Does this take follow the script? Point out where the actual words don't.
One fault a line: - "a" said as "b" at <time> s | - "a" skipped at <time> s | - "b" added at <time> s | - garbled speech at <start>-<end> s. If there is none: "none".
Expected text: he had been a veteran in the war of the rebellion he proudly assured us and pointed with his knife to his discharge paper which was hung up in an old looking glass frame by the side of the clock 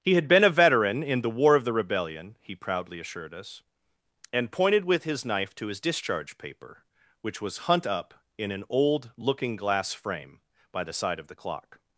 - "hung" said as "hunt" at 7.7 s